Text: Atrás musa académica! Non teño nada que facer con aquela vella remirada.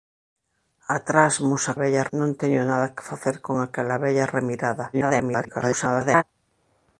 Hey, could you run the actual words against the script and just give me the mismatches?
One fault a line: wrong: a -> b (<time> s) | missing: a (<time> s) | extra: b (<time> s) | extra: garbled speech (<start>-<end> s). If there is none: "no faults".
wrong: académica -> vella (1.8 s)
extra: garbled speech (4.9-6.2 s)